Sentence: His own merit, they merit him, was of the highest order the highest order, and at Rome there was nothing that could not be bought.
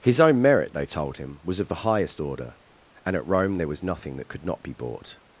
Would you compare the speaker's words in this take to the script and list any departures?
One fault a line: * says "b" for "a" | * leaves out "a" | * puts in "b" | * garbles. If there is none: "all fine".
* says "told" for "merit"
* leaves out "the highest order"